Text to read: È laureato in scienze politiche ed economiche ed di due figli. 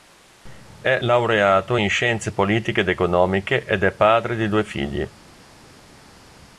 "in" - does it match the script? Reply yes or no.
yes